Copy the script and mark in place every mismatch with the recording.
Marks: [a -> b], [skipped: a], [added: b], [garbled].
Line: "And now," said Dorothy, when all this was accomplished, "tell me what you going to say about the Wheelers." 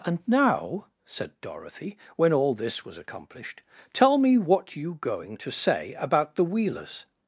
"And now," said Dorothy, when all this was accomplished, "tell me what you going to say about the Wheelers."